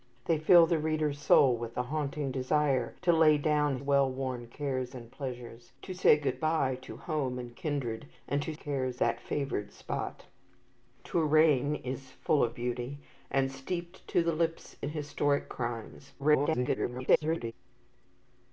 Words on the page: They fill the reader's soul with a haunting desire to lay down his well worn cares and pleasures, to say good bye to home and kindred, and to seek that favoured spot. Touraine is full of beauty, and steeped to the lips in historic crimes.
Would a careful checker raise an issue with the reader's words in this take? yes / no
yes